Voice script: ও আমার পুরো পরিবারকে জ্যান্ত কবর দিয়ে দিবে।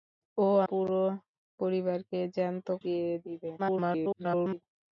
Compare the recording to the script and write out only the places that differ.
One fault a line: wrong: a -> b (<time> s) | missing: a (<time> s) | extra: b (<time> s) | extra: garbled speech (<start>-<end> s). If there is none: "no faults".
missing: আমার (0.5 s)
missing: কবর (2.7 s)
extra: garbled speech (3.6-4.6 s)